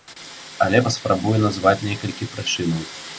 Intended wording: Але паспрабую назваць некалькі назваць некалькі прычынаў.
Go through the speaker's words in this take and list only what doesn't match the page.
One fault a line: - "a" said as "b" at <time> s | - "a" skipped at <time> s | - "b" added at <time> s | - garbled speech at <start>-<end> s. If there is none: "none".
- "назваць некалькі" skipped at 2.3 s